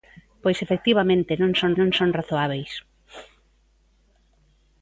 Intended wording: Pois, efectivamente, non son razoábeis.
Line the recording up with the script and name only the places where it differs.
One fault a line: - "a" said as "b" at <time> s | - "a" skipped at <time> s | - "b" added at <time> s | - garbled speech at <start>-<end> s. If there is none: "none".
- "non son" added at 1.8 s